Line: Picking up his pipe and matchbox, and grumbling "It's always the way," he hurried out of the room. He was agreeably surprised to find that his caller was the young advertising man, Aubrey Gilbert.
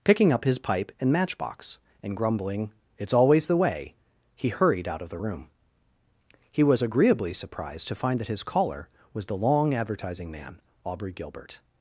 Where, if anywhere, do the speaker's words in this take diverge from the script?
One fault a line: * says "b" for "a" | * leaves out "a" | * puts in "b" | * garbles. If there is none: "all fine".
* says "long" for "young"